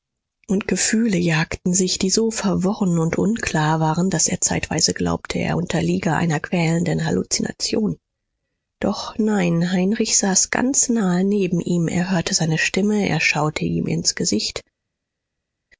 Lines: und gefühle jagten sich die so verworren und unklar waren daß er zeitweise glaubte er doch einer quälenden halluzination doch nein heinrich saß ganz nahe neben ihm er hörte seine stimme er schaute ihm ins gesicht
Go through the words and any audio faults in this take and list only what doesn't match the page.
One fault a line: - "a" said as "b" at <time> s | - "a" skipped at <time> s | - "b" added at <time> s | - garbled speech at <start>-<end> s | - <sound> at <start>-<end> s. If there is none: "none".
- "doch" said as "unterliege" at 5.6 s